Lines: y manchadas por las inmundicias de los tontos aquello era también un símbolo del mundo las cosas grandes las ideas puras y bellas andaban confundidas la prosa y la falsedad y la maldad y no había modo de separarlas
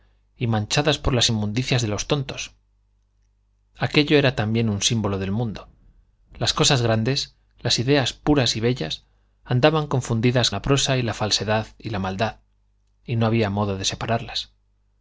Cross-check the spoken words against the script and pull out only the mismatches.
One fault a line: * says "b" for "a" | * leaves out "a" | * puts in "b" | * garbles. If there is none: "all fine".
all fine